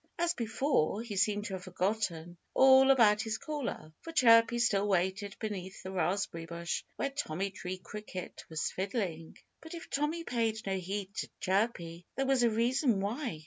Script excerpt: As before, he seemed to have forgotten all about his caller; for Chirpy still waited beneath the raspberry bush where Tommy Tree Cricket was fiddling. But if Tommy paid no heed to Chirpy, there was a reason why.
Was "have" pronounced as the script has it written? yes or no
yes